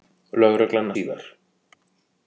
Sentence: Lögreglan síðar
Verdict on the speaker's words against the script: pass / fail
pass